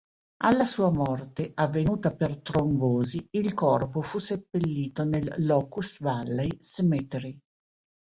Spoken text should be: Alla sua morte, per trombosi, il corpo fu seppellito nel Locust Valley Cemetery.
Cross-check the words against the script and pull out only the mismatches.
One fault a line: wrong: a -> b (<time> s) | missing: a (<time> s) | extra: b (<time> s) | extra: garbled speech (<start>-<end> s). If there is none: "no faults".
extra: avvenuta (1.5 s)